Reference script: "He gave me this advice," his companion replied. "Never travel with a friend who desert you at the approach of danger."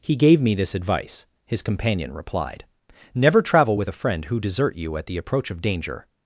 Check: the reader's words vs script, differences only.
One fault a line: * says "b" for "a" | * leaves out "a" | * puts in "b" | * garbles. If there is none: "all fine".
all fine